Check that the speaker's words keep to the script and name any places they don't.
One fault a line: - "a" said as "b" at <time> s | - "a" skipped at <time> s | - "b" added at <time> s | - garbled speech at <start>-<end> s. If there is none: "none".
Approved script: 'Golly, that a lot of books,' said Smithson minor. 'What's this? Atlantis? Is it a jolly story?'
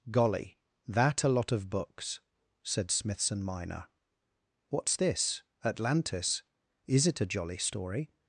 none